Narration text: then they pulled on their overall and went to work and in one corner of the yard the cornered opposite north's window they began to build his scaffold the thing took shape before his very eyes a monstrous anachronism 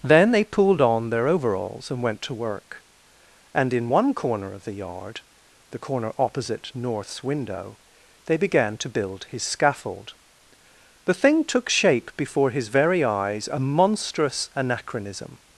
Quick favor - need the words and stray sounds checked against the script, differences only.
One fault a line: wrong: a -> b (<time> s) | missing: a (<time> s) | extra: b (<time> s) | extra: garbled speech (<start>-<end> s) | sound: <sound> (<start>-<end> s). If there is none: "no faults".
wrong: overall -> overalls (1.3 s)
wrong: cornered -> corner (5.8 s)